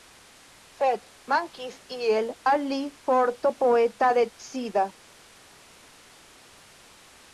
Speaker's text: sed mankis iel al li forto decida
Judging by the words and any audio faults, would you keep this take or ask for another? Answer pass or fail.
fail